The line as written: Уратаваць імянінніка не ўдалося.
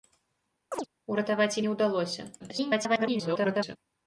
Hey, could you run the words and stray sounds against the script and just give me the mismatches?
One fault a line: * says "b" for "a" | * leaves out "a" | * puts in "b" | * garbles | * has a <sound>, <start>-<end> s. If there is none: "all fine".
* has a chirp, 0.7-0.9 s
* leaves out "імянінніка"
* garbles